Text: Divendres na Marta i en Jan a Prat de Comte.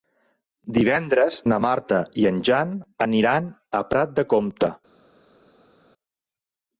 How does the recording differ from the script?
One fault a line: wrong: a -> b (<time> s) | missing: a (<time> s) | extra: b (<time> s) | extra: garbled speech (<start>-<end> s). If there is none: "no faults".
extra: aniran (3.1 s)